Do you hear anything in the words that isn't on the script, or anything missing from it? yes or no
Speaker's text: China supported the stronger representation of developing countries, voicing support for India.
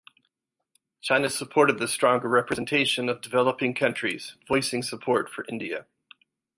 no